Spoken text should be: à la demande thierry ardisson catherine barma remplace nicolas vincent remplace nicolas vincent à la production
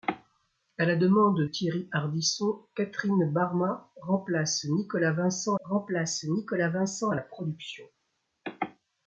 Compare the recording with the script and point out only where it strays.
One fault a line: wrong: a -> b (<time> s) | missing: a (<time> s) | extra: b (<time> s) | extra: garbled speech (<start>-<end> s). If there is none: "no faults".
no faults